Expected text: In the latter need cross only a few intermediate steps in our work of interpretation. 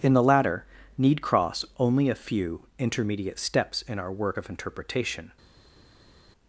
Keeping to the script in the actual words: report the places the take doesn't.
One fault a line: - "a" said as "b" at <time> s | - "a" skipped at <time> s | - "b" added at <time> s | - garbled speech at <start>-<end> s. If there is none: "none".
none